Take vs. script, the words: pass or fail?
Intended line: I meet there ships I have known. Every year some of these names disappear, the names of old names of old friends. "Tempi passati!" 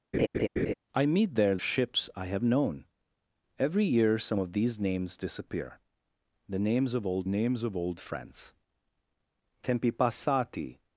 pass